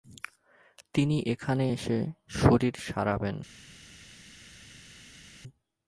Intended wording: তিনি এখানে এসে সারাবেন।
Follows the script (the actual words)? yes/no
no